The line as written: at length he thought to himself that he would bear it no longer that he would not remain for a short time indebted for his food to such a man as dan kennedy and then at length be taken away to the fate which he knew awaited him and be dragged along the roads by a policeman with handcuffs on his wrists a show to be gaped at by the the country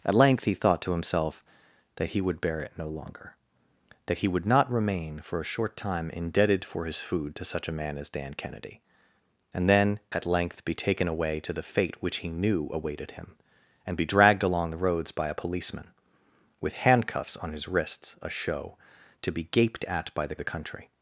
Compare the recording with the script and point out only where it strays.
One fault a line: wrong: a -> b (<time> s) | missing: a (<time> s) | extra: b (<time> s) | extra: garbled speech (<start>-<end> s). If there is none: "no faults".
no faults